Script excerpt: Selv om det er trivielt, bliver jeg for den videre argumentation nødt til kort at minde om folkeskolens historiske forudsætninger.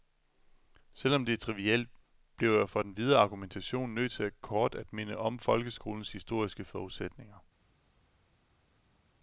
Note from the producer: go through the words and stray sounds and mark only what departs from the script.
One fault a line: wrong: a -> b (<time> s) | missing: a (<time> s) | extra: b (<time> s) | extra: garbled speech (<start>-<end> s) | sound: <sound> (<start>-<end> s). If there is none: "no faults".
no faults